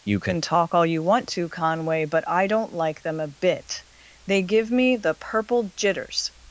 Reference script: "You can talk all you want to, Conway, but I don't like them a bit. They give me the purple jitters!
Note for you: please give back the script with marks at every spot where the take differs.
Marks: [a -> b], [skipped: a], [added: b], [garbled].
"You can talk all you want to, Conway, but I don't like them a bit. They give me the purple jitters!